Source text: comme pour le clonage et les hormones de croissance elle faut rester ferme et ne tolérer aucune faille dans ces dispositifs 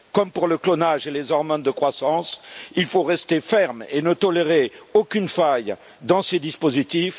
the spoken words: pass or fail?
fail